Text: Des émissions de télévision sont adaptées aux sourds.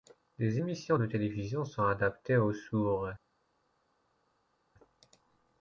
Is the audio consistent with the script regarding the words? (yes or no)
yes